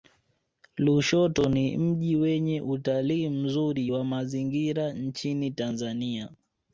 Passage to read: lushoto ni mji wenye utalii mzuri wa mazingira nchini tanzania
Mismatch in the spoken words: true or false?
false